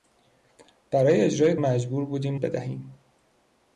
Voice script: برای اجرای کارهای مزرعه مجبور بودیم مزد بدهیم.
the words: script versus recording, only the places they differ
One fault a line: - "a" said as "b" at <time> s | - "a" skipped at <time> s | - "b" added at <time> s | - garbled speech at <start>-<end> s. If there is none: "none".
- "کارهای مزرعه" skipped at 1.6 s
- "مزد" skipped at 2.3 s